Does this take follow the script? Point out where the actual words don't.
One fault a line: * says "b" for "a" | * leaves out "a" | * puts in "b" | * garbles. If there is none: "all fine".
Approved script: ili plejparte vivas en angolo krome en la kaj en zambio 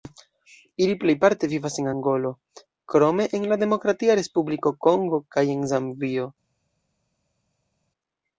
* puts in "demokratia respubliko kongo"